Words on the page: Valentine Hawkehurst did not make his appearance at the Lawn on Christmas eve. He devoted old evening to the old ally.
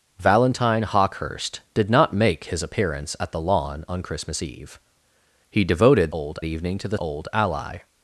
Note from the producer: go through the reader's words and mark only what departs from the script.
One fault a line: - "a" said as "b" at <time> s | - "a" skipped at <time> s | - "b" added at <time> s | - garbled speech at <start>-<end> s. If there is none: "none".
none